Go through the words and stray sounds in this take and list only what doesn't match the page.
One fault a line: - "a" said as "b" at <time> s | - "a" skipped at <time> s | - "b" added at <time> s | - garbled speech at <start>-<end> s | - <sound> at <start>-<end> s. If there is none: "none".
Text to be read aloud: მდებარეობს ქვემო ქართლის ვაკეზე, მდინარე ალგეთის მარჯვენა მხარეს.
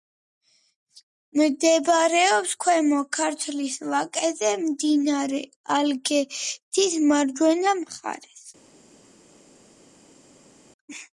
none